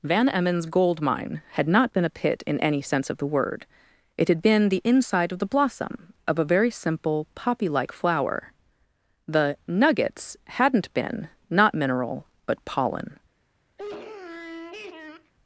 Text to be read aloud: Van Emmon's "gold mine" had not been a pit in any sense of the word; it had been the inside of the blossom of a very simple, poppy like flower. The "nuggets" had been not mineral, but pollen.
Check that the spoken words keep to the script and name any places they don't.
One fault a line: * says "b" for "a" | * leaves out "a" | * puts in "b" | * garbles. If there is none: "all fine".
* says "hadn't" for "had"